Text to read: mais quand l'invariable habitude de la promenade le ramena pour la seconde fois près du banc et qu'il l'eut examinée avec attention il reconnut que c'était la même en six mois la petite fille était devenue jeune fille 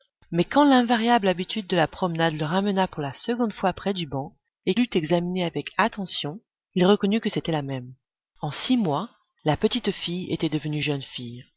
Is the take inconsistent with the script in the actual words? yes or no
yes